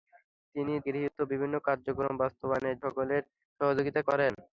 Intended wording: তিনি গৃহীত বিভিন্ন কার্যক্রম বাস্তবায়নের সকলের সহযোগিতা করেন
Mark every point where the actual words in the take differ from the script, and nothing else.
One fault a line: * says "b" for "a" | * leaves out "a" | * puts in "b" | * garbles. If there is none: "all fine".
all fine